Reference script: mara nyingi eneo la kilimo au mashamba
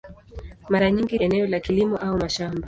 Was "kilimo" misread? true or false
false